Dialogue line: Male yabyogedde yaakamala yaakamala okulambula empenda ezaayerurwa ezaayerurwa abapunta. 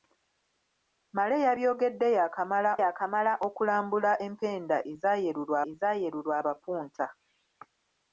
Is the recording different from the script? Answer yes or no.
no